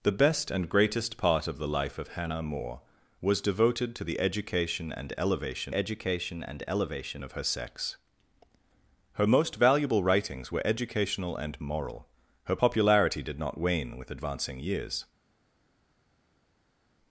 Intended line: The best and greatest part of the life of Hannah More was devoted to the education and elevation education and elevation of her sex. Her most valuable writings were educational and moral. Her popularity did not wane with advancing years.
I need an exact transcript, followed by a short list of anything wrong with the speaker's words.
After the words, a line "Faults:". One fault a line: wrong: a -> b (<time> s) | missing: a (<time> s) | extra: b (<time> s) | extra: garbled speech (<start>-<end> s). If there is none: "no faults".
The best and greatest part of the life of Hannah More was devoted to the education and elevation education and elevation of her sex. Her most valuable writings were educational and moral. Her popularity did not wane with advancing years.
Faults:
no faults